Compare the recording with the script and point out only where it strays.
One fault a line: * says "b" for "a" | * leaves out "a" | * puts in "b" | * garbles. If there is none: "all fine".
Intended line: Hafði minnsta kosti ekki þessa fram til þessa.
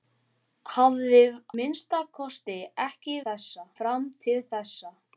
all fine